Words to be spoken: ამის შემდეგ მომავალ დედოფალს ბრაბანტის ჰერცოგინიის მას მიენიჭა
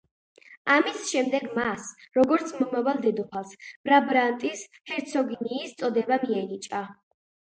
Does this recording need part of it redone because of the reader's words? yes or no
yes